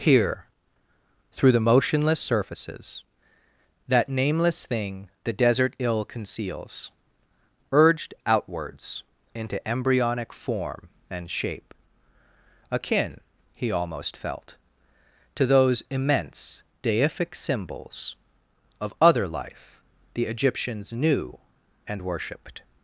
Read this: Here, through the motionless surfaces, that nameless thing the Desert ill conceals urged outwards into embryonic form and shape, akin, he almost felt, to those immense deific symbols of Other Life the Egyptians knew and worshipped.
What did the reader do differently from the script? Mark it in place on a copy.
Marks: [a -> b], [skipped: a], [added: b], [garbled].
Here, through the motionless surfaces, that nameless thing the Desert ill conceals urged outwards into embryonic form and shape, akin, he almost felt, to those immense deific symbols of Other Life the Egyptians knew and worshipped.